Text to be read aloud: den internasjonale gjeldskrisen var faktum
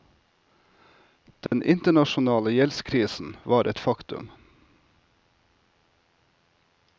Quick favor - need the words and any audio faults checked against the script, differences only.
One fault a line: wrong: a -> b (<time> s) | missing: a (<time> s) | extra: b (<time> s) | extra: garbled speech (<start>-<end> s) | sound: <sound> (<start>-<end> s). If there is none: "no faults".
sound: dropout (1.5-1.5 s)
extra: et (3.6 s)